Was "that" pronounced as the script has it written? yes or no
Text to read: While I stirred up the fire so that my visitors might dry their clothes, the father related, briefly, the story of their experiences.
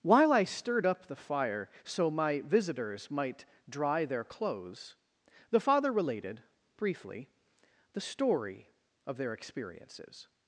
no